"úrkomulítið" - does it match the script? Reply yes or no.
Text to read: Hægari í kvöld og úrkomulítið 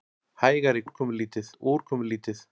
yes